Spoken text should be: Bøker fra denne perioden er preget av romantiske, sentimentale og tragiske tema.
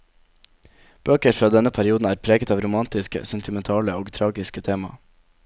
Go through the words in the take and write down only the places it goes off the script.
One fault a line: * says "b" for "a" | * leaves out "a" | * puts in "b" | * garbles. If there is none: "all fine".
all fine